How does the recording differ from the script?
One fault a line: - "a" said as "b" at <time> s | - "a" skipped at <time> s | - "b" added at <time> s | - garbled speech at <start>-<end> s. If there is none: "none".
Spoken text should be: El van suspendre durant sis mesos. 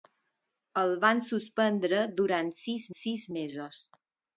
- "sis" added at 3.0 s